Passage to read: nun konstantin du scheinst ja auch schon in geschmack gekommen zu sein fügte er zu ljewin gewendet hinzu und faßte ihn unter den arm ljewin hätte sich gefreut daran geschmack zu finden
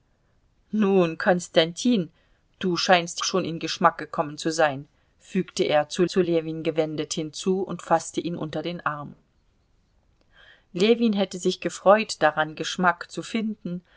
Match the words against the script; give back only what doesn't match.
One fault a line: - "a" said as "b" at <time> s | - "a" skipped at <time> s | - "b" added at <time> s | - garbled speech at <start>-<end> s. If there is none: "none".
- "ja auch" skipped at 3.2 s
- "zu" added at 6.1 s